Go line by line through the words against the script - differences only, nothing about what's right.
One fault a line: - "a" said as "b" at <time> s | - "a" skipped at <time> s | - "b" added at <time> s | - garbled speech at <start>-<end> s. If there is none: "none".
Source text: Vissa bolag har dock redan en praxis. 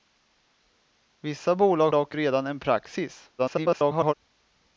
- "har" skipped at 1.9 s
- garbled speech at 3.4-4.1 s